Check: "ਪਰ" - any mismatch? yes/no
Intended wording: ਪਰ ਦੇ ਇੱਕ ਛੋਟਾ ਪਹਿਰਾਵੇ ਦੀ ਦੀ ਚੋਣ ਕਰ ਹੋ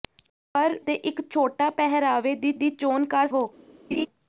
no